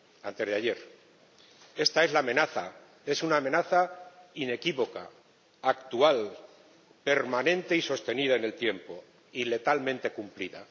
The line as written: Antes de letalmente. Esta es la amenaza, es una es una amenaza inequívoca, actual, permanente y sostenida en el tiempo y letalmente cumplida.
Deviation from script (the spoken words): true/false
true